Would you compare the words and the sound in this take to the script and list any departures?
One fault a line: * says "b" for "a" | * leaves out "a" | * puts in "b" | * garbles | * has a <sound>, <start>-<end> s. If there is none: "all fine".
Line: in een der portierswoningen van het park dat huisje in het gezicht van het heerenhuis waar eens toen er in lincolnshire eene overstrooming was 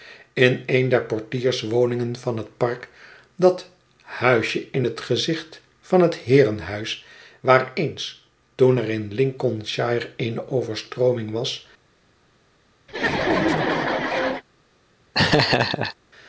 * has a laugh, 12.9-14.4 s
* has a laugh, 15.1-16.0 s